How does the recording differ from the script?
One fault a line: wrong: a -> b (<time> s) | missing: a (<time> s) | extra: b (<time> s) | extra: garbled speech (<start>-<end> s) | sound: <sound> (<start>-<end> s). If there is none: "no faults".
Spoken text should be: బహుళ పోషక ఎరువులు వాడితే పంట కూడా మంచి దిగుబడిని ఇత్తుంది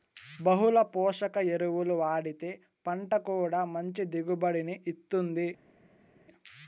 no faults